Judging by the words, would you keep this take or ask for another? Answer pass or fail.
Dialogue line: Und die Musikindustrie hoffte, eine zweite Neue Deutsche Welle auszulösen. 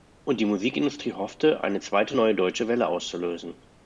pass